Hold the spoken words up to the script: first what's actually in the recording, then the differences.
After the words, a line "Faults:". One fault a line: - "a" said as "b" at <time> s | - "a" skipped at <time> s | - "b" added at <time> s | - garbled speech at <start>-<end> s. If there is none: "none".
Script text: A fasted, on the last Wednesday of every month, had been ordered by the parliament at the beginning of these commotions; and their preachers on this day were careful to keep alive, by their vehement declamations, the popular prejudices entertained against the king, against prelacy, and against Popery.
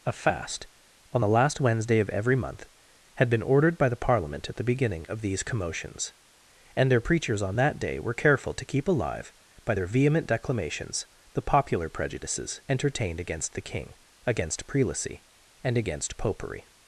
A fast, on the last Wednesday of every month, had been ordered by the parliament at the beginning of these commotions; and their preachers on that day were careful to keep alive, by their vehement declamations, the popular prejudices entertained against the king, against prelacy, and against Popery.
Faults:
- "fasted" said as "fast" at 0.1 s
- "this" said as "that" at 7.6 s